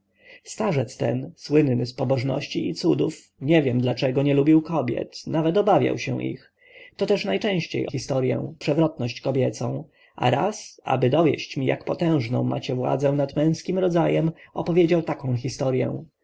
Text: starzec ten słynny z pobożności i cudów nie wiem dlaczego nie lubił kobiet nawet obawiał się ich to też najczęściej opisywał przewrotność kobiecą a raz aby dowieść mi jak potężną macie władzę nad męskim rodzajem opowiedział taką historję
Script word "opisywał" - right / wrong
wrong